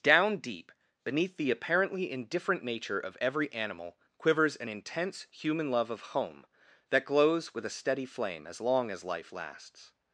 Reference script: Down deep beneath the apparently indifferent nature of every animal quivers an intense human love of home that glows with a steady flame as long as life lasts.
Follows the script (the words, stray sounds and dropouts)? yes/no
yes